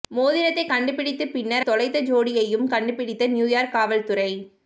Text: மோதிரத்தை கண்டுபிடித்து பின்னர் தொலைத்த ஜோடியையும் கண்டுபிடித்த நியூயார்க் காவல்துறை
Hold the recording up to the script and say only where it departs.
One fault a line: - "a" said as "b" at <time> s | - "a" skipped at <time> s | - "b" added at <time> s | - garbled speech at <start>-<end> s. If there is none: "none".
none